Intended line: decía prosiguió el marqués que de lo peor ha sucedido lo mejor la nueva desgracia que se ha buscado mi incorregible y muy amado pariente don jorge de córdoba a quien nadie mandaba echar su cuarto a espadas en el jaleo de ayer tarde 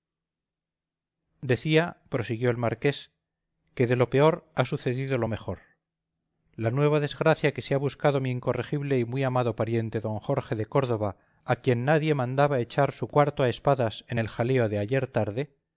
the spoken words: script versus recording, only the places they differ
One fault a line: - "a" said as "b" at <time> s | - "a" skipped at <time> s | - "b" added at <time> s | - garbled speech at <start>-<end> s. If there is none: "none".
none